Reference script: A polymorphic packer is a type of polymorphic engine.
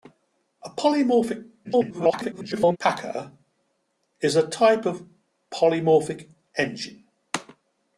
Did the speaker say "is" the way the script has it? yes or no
yes